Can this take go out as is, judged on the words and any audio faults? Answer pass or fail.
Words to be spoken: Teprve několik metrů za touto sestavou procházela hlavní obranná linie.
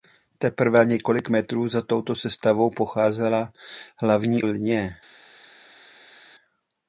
fail